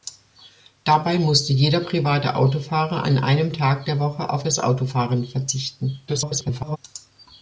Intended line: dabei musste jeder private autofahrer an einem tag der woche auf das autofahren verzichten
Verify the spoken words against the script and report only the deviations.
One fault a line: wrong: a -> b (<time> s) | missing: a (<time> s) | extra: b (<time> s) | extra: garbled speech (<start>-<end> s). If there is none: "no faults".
extra: garbled speech (6.1-6.8 s)